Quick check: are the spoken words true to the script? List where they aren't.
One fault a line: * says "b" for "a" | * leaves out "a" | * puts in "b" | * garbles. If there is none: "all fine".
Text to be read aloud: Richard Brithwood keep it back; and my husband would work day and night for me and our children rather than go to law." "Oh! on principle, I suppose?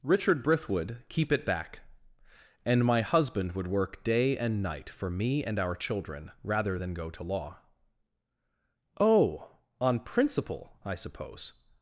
all fine